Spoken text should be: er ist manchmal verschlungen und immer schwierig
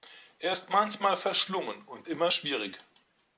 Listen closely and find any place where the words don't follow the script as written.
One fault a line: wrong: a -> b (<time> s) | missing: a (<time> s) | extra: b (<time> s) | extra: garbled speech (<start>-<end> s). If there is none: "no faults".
no faults